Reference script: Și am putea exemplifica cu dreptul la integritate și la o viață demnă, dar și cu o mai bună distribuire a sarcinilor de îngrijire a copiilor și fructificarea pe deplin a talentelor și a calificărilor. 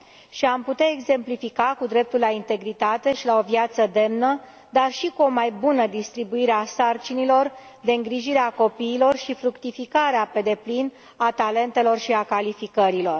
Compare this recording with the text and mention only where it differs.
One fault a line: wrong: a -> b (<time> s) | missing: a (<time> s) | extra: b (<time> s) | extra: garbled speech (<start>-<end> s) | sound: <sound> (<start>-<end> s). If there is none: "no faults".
no faults